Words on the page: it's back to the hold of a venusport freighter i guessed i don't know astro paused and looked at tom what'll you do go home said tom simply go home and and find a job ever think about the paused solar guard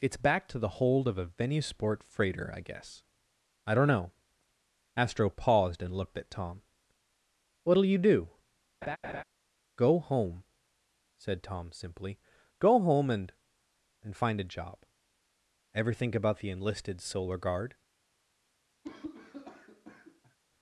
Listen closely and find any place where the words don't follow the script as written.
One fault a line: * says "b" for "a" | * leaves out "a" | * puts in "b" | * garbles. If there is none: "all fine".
* says "guess" for "guessed"
* says "enlisted" for "paused"